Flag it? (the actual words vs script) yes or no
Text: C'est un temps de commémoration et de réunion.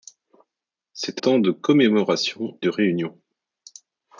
yes